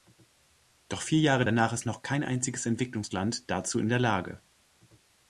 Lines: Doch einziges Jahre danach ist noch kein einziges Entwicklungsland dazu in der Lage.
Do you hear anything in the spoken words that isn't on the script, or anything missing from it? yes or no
yes